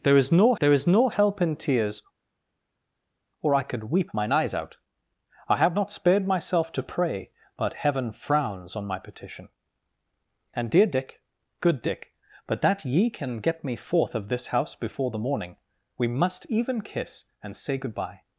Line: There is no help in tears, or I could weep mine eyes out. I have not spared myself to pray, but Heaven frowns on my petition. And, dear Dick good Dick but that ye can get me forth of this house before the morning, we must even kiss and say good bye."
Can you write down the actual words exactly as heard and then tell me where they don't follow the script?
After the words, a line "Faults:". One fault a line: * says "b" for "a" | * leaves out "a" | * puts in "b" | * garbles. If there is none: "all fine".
There is no there is no help in tears, or I could weep mine eyes out. I have not spared myself to pray, but Heaven frowns on my petition. And, dear Dick good Dick but that ye can get me forth of this house before the morning, we must even kiss and say good bye."
Faults:
* puts in "there is no"